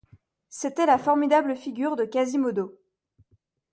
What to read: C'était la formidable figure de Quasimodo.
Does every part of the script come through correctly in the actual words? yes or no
yes